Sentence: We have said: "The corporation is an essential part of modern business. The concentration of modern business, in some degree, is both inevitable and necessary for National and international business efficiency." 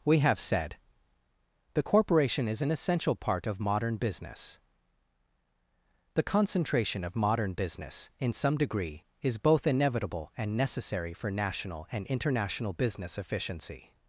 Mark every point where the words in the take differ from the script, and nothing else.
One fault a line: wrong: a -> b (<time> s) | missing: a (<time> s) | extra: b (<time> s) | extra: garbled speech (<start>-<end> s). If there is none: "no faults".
no faults